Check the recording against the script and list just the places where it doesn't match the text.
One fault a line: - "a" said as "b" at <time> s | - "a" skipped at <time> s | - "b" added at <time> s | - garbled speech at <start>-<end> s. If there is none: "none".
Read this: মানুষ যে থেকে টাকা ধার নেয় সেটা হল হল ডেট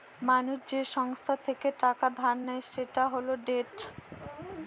- "সংস্থা" added at 0.9 s
- "হল" skipped at 3.3 s